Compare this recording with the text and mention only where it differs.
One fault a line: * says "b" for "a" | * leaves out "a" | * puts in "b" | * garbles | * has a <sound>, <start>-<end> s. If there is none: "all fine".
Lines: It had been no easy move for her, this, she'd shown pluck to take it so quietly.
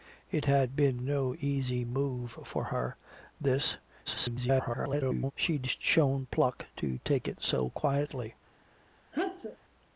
* garbles
* has a sneeze, 9.1-9.6 s